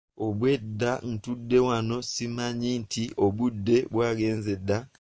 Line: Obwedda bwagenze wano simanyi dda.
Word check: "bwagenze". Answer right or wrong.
wrong